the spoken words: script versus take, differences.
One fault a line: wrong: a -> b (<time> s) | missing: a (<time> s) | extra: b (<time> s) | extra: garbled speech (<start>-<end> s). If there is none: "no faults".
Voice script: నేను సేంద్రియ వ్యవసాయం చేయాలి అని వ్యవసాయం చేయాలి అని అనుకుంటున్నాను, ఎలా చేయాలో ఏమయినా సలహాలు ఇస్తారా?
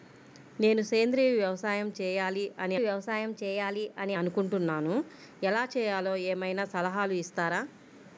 no faults